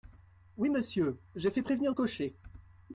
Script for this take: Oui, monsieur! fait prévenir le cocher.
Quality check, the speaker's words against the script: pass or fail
fail